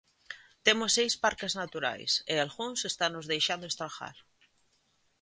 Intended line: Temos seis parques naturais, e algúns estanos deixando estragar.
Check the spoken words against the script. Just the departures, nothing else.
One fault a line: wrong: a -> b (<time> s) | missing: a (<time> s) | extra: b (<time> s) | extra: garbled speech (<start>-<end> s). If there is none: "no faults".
no faults